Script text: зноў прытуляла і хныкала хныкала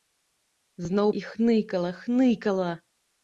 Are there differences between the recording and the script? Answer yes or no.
yes